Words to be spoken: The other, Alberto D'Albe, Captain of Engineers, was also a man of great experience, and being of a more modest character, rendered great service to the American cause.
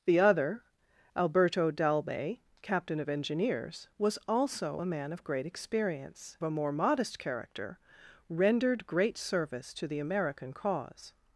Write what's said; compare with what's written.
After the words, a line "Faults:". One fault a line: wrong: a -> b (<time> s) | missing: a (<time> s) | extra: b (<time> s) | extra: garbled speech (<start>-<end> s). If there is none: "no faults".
The other, Alberto D'Albe, Captain of Engineers, was also a man of great experience, a more modest character, rendered great service to the American cause.
Faults:
missing: and being of (6.4 s)